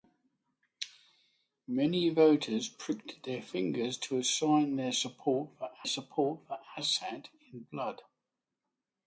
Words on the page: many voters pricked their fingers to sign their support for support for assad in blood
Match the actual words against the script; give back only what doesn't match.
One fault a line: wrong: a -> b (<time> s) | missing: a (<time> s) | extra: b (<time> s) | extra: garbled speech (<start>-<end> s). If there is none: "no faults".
no faults